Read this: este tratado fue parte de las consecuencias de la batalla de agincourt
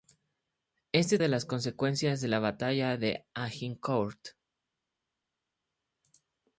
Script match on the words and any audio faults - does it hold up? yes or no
no